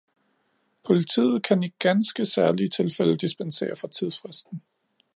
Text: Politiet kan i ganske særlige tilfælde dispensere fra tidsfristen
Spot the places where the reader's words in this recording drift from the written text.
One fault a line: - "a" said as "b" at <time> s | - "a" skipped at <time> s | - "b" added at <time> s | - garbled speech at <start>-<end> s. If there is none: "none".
none